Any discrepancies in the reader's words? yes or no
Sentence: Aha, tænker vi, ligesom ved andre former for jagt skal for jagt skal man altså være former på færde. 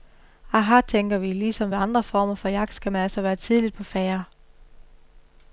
yes